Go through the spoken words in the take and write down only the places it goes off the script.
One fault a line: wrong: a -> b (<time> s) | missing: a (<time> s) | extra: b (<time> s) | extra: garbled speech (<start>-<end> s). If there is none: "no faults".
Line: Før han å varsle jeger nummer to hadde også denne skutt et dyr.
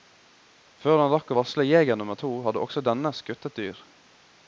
extra: rakk (1.1 s)